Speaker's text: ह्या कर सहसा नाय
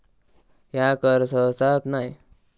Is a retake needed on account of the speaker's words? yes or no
no